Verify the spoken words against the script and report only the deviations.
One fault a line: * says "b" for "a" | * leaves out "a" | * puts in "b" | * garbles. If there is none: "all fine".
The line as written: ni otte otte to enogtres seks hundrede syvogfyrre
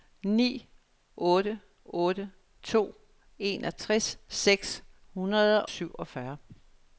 all fine